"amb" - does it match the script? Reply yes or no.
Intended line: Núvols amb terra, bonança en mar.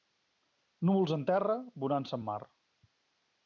no